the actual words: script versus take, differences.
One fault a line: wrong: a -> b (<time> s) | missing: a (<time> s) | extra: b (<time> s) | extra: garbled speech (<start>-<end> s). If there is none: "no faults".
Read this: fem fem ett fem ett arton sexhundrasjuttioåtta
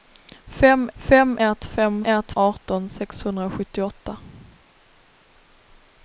no faults